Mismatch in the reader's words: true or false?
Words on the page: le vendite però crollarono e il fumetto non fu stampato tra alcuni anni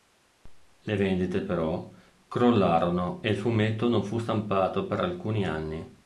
true